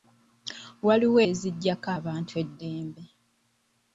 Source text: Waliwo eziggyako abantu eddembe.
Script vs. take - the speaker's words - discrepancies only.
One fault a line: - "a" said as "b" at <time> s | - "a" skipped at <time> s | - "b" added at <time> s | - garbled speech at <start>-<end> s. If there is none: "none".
none